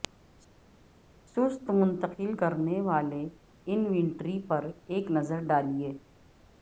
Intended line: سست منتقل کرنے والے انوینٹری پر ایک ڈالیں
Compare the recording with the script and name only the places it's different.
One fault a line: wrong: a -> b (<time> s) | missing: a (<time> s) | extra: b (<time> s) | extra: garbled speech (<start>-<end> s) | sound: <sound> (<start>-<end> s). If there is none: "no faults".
extra: نظر (5.1 s)